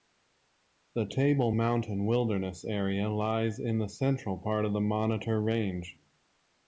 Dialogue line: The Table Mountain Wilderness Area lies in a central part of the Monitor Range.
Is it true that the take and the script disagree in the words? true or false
true